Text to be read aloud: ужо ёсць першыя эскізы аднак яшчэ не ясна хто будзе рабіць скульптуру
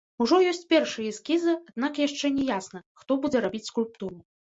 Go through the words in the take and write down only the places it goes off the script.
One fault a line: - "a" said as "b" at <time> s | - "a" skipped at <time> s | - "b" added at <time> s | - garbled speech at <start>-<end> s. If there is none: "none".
none